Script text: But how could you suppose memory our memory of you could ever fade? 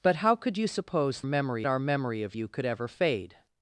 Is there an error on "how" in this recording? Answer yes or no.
no